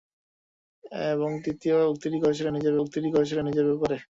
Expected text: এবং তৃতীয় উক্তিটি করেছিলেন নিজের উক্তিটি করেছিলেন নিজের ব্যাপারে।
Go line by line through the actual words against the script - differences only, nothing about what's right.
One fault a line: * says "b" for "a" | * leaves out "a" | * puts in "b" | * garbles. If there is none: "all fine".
all fine